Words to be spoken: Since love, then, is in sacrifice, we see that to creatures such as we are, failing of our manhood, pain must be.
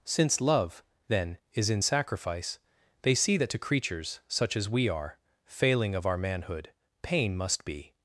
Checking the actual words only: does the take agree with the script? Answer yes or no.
no